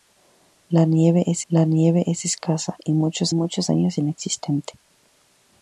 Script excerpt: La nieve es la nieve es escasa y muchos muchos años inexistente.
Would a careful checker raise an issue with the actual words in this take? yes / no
no